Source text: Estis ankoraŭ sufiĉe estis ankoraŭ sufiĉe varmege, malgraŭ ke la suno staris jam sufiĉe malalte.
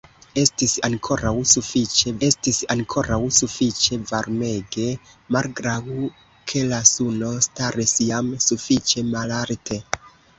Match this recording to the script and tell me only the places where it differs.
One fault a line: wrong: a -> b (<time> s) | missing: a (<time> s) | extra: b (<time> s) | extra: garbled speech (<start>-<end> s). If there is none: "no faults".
no faults